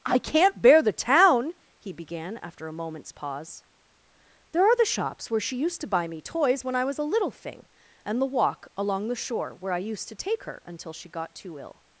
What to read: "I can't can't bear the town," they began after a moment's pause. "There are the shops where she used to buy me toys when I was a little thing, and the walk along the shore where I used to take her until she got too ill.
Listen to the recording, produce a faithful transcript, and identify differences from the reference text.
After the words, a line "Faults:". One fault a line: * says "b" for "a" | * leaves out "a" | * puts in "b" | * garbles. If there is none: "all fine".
"I can't bear the town," he began after a moment's pause. "There are the shops where she used to buy me toys when I was a little thing, and the walk along the shore where I used to take her until she got too ill.
Faults:
* leaves out "can't"
* says "he" for "they"